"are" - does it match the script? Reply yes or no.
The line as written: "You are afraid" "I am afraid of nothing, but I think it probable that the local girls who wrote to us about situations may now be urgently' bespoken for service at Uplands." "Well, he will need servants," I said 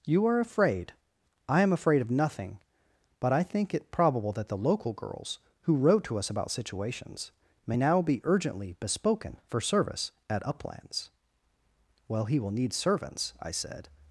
yes